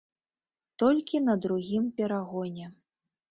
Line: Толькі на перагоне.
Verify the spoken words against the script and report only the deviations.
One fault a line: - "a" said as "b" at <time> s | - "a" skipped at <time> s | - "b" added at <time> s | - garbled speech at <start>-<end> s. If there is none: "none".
- "другім" added at 1.4 s